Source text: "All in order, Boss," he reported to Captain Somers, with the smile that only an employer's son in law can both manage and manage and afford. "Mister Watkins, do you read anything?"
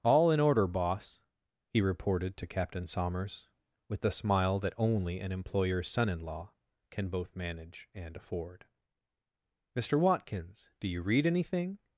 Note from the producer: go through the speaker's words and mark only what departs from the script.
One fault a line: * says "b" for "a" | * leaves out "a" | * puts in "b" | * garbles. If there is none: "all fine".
* leaves out "manage and"